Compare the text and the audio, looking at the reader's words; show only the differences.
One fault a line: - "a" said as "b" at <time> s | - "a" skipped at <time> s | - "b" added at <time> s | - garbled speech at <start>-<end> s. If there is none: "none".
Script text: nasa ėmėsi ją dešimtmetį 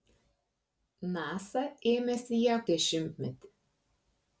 none